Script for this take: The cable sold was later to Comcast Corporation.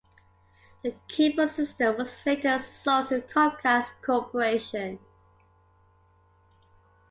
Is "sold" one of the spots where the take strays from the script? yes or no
yes